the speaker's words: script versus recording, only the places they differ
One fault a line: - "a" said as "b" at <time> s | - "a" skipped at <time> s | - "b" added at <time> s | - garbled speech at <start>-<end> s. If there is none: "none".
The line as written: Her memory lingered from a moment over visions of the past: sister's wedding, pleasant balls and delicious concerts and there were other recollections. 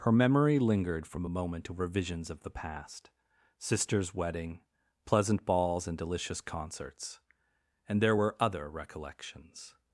none